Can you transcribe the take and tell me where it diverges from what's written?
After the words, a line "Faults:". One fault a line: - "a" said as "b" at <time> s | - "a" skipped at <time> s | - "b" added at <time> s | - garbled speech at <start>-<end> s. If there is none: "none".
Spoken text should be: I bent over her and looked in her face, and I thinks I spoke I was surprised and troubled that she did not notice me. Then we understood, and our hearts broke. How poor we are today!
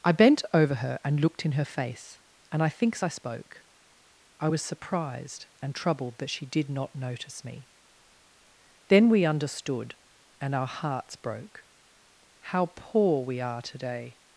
I bent over her and looked in her face, and I thinks I spoke I was surprised and troubled that she did not notice me. Then we understood, and our hearts broke. How poor we are today!
Faults:
none